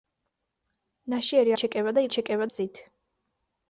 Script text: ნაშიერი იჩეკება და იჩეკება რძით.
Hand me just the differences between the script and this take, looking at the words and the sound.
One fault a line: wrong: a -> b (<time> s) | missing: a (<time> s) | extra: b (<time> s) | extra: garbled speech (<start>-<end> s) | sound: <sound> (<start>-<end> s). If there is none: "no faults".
no faults